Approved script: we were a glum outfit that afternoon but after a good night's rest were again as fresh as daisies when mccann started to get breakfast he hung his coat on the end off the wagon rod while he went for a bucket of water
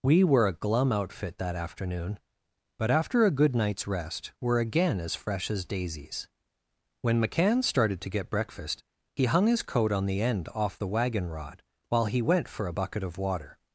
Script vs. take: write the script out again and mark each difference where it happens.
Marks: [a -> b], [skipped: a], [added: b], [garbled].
we were a glum outfit that afternoon but after a good night's rest were again as fresh as daisies when mccann started to get breakfast he hung his coat on the end off the wagon rod while he went for a bucket of water